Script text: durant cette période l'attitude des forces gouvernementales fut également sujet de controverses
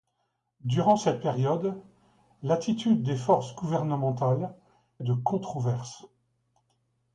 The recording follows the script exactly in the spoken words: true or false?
false